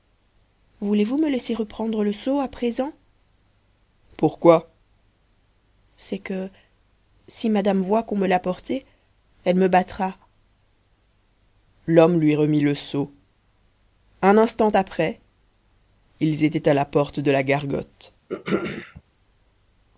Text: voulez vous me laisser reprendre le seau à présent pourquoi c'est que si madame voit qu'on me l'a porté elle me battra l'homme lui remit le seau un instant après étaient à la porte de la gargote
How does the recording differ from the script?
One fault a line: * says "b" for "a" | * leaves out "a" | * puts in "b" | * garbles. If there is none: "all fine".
* puts in "ils"